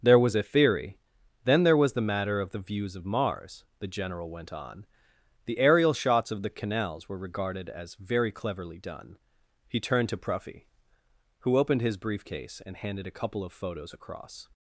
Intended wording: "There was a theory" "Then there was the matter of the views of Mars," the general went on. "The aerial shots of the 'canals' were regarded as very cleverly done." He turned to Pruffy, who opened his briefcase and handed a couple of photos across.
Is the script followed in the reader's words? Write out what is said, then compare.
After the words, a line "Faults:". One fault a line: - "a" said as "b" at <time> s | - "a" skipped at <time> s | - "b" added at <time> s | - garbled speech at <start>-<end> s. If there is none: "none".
"There was a theory" "Then there was the matter of the views of Mars," the general went on. "The aerial shots of the 'canals' were regarded as very cleverly done." He turned to Pruffy, who opened his briefcase and handed a couple of photos across.
Faults:
none